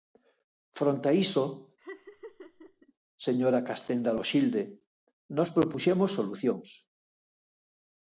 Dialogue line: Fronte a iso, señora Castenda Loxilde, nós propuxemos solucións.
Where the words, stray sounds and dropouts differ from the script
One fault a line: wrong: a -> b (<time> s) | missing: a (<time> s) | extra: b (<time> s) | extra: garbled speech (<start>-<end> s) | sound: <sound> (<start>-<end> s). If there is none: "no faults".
sound: laugh (1.8-2.9 s)